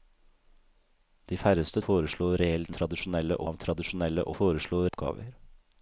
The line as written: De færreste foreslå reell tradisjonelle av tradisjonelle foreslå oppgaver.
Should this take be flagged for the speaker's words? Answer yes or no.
no